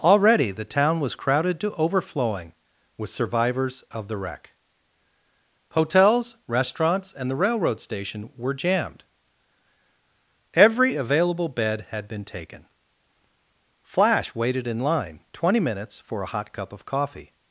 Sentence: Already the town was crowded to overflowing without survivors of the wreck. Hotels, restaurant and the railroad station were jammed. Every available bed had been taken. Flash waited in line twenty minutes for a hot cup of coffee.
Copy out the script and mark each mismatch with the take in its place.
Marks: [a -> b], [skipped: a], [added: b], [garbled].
Already the town was crowded to overflowing [without -> with] survivors of the wreck. Hotels, [restaurant -> restaurants] and the railroad station were jammed. Every available bed had been taken. Flash waited in line twenty minutes for a hot cup of coffee.